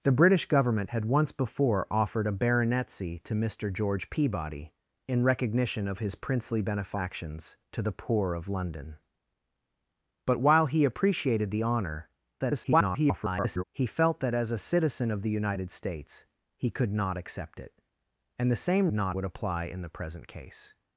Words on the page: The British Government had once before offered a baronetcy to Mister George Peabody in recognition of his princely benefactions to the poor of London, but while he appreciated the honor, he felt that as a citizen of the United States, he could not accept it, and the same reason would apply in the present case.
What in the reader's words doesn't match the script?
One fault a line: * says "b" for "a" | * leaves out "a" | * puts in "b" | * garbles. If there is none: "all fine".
* garbles
* says "not" for "reason"